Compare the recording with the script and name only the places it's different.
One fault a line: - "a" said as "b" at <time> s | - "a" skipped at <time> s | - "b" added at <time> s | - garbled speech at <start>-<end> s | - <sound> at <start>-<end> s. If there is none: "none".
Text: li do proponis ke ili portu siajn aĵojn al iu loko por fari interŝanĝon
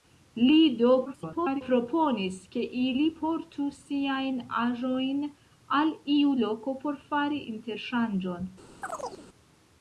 - garbled speech at 1.1-1.6 s
- chirp at 8.8-9.3 s